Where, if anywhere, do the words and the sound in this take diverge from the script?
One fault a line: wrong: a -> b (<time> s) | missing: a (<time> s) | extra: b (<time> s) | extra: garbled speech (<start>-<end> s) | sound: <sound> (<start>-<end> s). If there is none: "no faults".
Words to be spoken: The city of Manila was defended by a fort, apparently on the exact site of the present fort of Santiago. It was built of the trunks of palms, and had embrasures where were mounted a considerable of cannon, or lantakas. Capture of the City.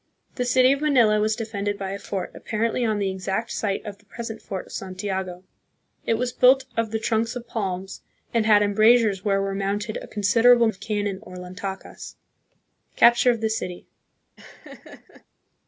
sound: laugh (14.4-15.2 s)